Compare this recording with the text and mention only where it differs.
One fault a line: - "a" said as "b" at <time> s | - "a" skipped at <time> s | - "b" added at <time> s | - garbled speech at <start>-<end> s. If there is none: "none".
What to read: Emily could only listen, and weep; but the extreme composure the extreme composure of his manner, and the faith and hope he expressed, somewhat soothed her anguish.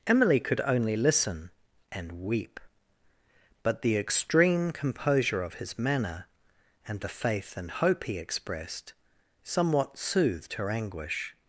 - "the extreme composure" skipped at 5.4 s